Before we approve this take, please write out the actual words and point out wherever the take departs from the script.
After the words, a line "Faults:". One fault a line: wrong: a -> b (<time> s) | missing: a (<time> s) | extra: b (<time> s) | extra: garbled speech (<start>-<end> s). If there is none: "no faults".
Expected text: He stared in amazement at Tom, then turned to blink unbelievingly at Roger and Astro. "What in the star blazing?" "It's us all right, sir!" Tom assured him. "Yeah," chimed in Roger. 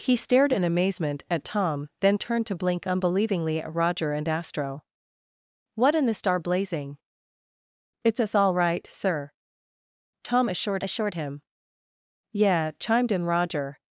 He stared in amazement at Tom, then turned to blink unbelievingly at Roger and Astro. "What in the star blazing?" "It's us all right, sir!" Tom assured assured him. "Yeah," chimed in Roger.
Faults:
extra: assured (10.8 s)